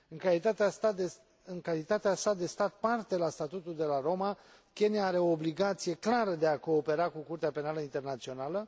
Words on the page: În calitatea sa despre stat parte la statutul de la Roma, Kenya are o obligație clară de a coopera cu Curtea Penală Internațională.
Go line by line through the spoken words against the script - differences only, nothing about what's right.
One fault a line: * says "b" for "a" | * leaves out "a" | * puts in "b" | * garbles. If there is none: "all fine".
* says "de" for "despre"